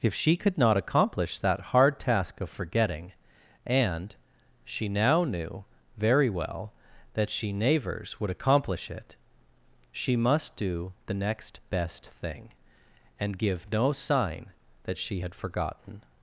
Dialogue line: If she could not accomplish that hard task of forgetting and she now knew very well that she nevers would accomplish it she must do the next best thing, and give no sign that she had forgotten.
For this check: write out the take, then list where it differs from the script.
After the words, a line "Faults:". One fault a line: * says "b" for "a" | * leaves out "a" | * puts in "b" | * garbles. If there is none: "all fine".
If she could not accomplish that hard task of forgetting and she now knew very well that she nevers would accomplish it she must do the next best thing, and give no sign that she had forgotten.
Faults:
all fine